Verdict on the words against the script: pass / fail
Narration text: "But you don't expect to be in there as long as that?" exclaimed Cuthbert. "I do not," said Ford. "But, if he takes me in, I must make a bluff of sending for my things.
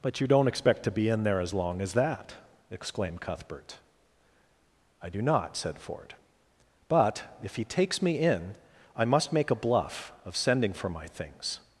pass